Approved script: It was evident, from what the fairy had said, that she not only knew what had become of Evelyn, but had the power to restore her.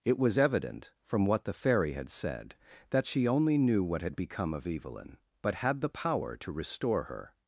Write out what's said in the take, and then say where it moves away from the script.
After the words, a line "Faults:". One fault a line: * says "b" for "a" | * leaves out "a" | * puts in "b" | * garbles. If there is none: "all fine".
It was evident, from what the fairy had said, that she only knew what had become of Evelyn, but had the power to restore her.
Faults:
* leaves out "not"